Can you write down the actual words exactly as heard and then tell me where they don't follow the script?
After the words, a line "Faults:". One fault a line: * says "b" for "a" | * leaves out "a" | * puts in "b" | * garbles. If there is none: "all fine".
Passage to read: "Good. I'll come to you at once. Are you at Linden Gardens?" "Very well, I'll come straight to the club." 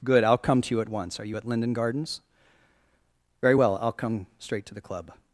"Good. I'll come to you at once. Are you at Linden Gardens?" "Very well, I'll come straight to the club."
Faults:
all fine